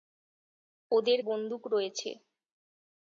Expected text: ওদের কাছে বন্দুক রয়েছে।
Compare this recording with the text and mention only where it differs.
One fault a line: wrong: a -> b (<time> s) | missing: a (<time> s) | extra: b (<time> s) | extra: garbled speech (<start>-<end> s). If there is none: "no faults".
missing: কাছে (1.2 s)